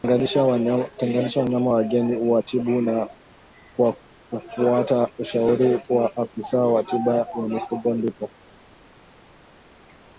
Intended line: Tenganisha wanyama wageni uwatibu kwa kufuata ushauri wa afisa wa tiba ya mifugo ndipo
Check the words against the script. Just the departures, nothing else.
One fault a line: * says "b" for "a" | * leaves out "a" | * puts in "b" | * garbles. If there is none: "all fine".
all fine